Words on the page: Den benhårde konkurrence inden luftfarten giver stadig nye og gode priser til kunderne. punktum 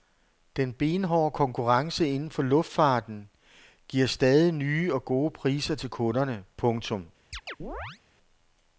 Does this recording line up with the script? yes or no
no